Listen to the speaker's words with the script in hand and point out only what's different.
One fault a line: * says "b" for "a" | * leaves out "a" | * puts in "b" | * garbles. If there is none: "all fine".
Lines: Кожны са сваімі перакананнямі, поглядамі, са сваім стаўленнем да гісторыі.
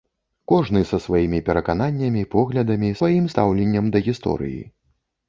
* leaves out "са"